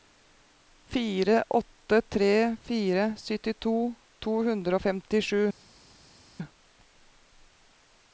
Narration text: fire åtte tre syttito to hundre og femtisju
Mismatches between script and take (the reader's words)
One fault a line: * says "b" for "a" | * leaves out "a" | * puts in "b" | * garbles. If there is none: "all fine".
* puts in "fire"